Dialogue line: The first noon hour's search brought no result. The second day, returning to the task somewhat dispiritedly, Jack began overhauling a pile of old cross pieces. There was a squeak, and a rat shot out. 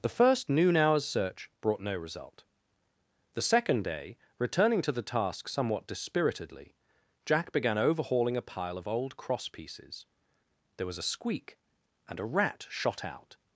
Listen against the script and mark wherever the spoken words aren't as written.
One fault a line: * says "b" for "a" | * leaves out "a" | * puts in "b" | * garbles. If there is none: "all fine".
all fine